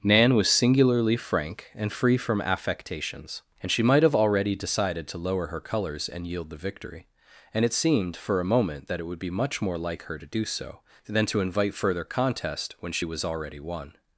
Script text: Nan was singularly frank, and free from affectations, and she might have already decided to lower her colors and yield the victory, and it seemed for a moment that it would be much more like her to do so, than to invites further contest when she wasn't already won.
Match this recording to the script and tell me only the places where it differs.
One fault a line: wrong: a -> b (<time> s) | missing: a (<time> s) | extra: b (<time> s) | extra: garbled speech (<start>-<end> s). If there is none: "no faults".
wrong: invites -> invite (11.4 s)
wrong: wasn't -> was (13.0 s)